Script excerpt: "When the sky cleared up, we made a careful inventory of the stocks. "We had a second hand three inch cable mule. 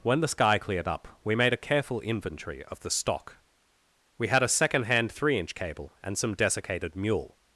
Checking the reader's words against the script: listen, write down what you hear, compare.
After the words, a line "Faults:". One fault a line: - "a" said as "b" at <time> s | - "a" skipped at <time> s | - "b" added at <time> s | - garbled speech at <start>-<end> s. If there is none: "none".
"When the sky cleared up, we made a careful inventory of the stock. "We had a second hand three inch cable and some desiccated mule.
Faults:
- "stocks" said as "stock" at 2.9 s
- "and some desiccated" added at 6.0 s